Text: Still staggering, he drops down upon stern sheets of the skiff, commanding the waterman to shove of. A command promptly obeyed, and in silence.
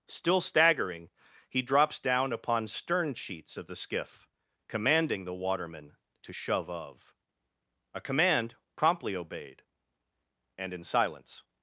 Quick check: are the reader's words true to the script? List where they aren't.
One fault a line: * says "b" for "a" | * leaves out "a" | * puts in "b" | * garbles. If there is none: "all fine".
all fine